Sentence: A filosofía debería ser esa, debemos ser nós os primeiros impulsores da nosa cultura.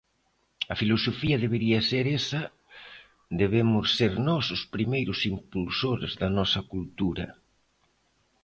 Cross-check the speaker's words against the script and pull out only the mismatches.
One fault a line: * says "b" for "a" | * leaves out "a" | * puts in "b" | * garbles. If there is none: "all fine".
all fine